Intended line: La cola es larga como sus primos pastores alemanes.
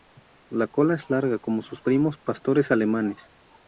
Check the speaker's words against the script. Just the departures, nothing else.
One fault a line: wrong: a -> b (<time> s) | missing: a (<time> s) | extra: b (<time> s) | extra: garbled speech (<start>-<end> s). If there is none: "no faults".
no faults